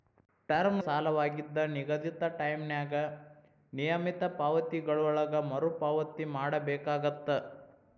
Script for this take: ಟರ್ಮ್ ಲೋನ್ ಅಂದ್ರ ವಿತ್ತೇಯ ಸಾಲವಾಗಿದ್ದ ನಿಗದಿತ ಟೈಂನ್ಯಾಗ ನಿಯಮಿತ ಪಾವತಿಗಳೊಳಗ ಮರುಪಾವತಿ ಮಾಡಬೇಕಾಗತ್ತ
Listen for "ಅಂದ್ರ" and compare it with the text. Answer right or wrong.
wrong